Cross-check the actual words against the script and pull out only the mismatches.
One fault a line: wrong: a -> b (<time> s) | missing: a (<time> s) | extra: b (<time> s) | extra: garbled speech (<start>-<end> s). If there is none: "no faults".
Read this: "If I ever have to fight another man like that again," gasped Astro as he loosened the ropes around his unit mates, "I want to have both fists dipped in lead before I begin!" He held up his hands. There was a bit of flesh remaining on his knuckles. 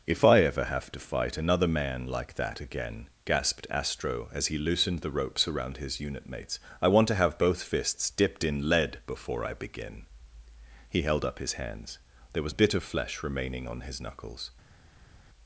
no faults